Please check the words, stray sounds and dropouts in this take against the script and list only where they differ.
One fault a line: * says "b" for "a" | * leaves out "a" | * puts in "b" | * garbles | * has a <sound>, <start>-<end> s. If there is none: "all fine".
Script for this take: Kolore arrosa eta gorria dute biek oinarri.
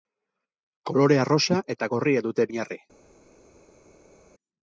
* leaves out "biek"